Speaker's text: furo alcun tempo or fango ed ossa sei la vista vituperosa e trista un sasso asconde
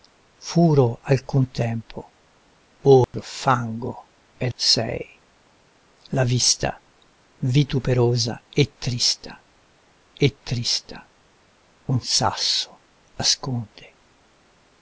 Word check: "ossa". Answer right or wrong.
wrong